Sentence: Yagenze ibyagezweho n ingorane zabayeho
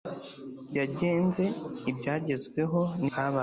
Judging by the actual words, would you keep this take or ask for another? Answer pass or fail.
fail